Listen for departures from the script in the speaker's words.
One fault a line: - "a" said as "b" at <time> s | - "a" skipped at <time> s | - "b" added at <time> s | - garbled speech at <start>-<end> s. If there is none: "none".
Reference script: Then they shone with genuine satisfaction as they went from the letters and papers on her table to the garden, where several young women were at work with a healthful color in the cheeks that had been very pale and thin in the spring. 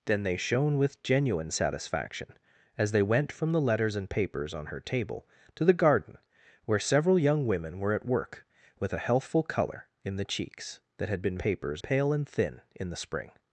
- "very" said as "papers" at 11.4 s